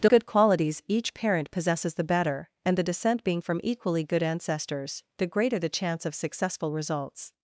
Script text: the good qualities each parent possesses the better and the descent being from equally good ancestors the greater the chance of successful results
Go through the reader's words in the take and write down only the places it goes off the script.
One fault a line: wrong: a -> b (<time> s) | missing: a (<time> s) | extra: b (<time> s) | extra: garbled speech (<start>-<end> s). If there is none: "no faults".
no faults